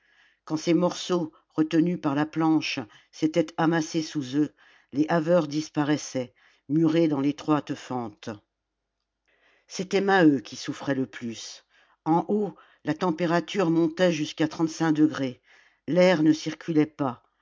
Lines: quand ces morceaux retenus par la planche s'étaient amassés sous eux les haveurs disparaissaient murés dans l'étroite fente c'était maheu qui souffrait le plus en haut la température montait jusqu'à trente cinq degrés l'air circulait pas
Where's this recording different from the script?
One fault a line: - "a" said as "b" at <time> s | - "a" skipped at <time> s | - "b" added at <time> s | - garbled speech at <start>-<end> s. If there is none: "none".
- "ne" added at 16.2 s